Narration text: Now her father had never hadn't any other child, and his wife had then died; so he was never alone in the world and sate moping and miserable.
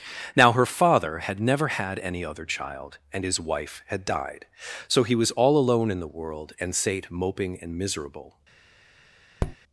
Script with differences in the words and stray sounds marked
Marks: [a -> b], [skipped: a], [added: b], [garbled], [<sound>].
Now her father had never [hadn't -> had] any other child, and his wife had [skipped: then] died; so he was [never -> all] alone in the world and sate moping and miserable. [tap]